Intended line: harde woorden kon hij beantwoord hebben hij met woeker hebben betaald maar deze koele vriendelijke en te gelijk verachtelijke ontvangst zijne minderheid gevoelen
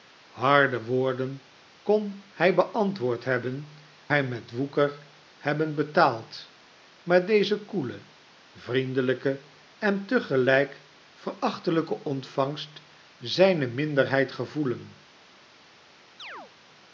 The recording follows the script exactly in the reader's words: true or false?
true